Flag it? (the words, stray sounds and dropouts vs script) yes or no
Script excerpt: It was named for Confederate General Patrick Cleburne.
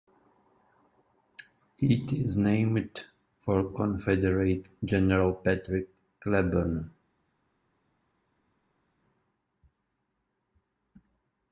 yes